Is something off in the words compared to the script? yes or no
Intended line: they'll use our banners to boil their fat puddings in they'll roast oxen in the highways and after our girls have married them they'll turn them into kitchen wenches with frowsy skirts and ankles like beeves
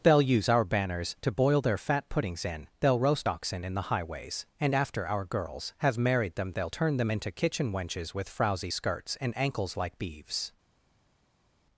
no